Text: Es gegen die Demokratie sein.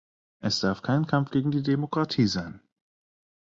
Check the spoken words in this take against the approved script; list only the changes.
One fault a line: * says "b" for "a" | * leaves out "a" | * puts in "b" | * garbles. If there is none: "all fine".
* puts in "darf kein Kampf"